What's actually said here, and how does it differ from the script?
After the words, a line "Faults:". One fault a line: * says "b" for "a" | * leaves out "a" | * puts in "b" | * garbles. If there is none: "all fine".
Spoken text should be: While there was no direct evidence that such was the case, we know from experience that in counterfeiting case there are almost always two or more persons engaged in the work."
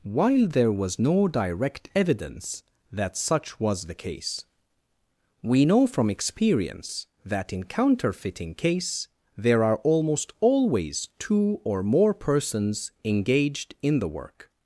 While there was no direct evidence that such was the case, we know from experience that in counterfeiting case there are almost always two or more persons engaged in the work."
Faults:
all fine